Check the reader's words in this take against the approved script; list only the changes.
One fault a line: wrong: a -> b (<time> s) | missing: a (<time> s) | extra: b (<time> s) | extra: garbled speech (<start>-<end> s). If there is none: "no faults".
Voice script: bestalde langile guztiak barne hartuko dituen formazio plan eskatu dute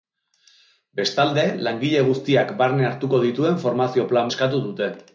no faults